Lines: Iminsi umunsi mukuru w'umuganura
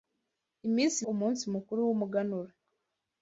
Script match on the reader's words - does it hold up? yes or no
yes